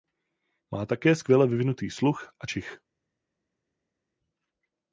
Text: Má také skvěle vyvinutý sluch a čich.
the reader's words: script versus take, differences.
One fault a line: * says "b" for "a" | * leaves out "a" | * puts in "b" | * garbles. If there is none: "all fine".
all fine